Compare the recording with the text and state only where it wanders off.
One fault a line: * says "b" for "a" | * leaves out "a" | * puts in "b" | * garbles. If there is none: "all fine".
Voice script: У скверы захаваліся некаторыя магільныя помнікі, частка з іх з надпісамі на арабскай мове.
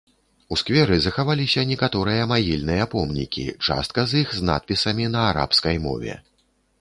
all fine